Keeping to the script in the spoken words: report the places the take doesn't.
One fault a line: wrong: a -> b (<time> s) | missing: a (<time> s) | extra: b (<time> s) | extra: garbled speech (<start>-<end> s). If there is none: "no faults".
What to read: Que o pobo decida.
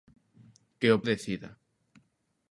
missing: pobo (1.0 s)